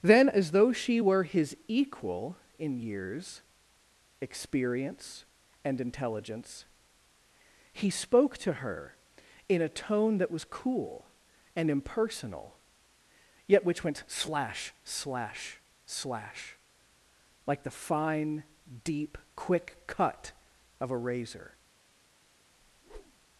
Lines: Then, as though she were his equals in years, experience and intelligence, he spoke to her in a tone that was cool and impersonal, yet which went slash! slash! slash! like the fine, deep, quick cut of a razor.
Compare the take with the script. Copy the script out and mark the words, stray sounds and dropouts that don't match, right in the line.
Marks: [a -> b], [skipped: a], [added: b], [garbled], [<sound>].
Then, as though she were his [equals -> equal] in years, experience and intelligence, he spoke to her in a tone that was cool and impersonal, yet which went slash! slash! slash! like the fine, deep, quick cut of a razor. [whoosh]